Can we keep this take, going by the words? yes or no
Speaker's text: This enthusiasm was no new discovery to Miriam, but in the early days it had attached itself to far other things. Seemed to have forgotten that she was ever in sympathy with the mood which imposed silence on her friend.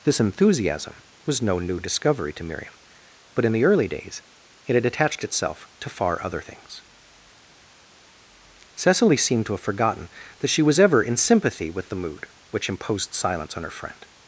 no